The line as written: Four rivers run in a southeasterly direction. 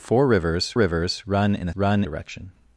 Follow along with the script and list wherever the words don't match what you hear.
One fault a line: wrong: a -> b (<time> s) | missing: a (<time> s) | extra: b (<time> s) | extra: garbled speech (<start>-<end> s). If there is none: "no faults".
extra: rivers (0.7 s)
wrong: southeasterly -> run (1.7 s)